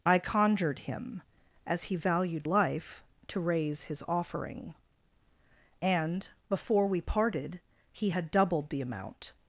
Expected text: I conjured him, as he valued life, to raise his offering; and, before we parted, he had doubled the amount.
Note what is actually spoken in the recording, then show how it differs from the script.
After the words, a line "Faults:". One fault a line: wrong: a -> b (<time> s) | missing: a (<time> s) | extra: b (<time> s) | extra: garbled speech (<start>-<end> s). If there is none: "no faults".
I conjured him, as he valued life, to raise his offering; and, before we parted, he had doubled the amount.
Faults:
no faults